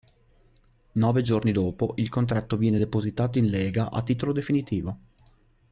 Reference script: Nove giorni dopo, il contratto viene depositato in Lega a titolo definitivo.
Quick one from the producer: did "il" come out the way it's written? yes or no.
yes